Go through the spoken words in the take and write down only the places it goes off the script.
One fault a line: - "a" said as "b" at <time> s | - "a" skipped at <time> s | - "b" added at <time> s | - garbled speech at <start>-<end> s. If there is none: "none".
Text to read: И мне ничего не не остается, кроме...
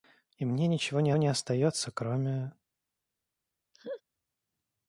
none